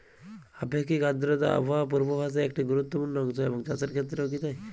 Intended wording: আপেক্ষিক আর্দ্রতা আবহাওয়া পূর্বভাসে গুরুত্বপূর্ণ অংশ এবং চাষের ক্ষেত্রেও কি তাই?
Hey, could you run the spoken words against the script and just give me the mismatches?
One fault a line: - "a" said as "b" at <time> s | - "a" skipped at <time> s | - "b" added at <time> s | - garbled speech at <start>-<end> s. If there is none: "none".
- "একটি" added at 2.4 s